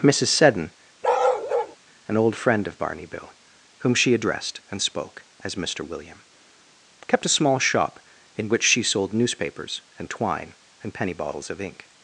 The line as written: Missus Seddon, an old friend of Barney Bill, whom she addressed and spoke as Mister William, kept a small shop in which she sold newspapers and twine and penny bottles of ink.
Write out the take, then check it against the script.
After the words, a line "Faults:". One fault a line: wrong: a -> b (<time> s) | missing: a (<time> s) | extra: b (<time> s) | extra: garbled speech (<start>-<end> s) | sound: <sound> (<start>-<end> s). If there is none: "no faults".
Missus Seddon, an old friend of Barney Bill, whom she addressed and spoke as Mister William, kept a small shop in which she sold newspapers and twine and penny bottles of ink.
Faults:
sound: bark (1.0-1.8 s)